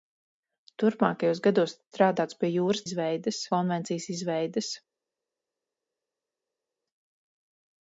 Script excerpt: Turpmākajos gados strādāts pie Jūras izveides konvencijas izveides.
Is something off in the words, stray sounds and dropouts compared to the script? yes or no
no